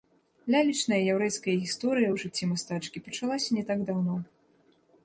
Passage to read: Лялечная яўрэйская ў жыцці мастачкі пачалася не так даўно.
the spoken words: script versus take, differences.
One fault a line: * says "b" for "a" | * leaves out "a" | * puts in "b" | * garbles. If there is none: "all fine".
* puts in "гісторыя"